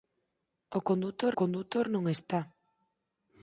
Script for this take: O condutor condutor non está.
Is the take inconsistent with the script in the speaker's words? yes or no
no